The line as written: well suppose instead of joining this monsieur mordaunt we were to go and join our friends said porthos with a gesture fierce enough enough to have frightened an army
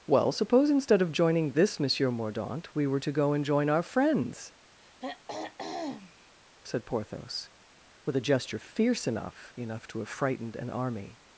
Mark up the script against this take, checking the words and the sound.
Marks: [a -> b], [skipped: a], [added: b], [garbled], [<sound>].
well suppose instead of joining this monsieur mordaunt we were to go and join our friends [throat clearing] said porthos with a gesture fierce enough enough to have frightened an army